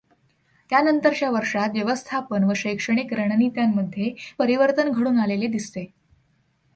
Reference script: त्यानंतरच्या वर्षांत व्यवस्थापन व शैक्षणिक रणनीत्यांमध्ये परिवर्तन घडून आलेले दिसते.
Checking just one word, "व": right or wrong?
right